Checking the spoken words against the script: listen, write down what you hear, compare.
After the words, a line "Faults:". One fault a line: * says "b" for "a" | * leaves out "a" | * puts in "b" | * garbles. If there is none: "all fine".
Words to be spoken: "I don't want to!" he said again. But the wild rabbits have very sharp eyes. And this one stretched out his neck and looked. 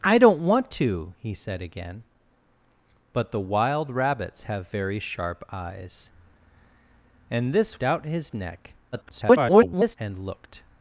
"I don't want to!" he said again. But the wild rabbits have very sharp eyes. And this out his neck [garbled] and looked.
Faults:
* leaves out "one stretched"
* garbles